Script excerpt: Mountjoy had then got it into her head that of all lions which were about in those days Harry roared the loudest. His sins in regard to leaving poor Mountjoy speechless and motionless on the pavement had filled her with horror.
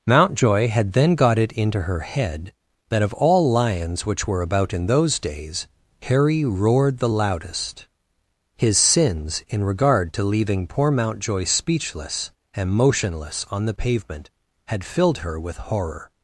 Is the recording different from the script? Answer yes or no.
no